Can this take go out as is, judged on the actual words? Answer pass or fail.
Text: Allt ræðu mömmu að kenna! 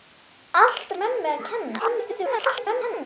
fail